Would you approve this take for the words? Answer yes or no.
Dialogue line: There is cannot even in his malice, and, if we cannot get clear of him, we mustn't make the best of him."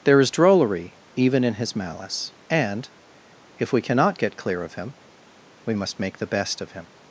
no